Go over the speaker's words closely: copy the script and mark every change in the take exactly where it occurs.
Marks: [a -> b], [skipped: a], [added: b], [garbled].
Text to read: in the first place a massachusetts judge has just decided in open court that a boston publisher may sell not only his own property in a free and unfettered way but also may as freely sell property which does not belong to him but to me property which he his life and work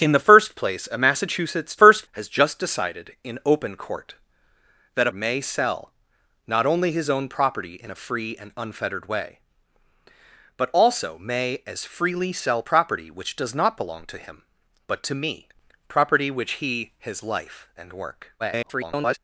in the first place a massachusetts [judge -> first] has just decided in open court that [skipped: a boston publisher] may sell not only his own property in a free and unfettered way but also may as freely sell property which does not belong to him but to me property which he his life and work [garbled]